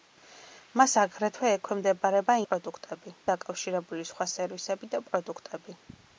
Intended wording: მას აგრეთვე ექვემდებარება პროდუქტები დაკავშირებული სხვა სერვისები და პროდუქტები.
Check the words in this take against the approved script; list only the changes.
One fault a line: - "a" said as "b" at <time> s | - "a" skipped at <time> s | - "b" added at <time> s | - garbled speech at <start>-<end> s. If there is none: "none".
none